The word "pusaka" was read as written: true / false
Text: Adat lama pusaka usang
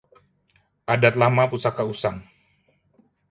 true